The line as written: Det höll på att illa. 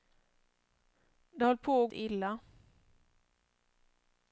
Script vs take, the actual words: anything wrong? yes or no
no